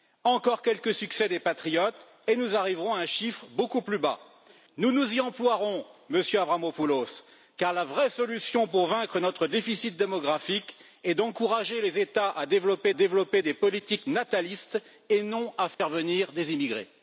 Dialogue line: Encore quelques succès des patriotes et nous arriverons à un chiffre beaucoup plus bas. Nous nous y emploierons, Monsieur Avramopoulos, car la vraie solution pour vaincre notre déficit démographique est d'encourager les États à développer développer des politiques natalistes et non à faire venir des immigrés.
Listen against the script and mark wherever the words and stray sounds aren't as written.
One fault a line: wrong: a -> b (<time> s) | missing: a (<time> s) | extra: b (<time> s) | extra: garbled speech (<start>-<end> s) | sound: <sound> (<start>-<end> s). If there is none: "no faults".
sound: dropout (15.7-15.8 s)